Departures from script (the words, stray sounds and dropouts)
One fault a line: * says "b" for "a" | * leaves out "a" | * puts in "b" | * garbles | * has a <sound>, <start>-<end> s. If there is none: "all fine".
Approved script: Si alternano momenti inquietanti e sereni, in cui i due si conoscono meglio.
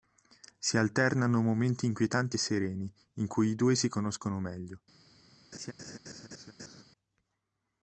* has a laugh, 5.5-6.8 s